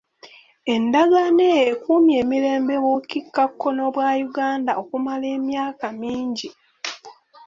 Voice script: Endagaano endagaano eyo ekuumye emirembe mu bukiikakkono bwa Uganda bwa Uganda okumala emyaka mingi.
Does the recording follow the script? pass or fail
fail